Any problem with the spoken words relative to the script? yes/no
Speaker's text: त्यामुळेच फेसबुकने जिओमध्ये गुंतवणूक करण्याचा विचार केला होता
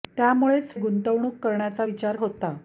yes